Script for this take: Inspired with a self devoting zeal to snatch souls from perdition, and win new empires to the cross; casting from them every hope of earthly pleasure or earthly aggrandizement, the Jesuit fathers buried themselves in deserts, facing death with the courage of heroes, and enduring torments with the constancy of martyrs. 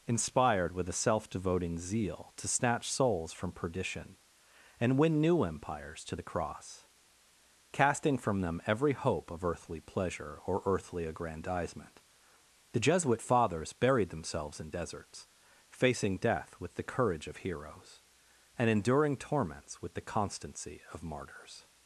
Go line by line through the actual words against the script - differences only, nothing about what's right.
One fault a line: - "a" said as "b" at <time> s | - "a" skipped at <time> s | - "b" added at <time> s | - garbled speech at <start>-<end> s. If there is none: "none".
none